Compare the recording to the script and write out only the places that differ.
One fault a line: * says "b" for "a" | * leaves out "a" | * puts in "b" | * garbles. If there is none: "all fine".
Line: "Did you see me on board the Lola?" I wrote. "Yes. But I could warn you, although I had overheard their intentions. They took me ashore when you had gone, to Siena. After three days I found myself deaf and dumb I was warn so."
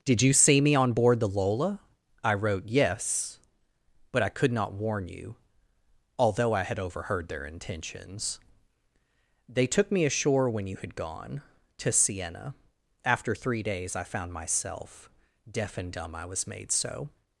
* puts in "not"
* says "made" for "warn"